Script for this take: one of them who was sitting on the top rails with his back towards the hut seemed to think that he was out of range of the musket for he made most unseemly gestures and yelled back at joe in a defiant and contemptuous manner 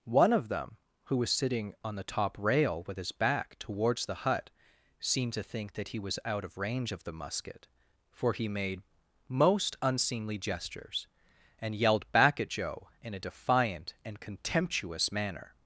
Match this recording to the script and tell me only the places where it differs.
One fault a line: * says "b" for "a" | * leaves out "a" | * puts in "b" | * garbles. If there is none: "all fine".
* says "rail" for "rails"